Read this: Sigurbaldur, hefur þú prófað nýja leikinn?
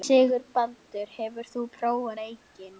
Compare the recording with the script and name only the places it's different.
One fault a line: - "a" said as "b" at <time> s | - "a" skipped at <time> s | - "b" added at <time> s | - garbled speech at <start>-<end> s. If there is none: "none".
- "nýja" skipped at 2.1 s